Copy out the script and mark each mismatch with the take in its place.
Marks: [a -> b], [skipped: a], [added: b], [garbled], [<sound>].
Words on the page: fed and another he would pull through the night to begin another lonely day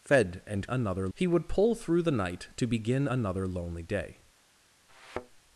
fed and another he would pull through the night to begin another lonely day [thud]